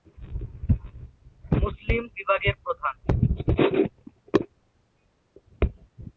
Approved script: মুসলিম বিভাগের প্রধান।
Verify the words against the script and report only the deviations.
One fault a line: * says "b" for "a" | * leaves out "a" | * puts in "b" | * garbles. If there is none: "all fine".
all fine